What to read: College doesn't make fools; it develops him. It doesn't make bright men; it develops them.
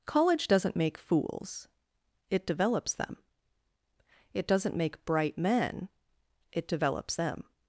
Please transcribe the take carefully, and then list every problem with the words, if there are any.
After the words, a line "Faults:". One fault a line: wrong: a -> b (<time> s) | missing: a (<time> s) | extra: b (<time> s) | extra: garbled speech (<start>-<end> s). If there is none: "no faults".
College doesn't make fools; it develops them. It doesn't make bright men; it develops them.
Faults:
wrong: him -> them (3.0 s)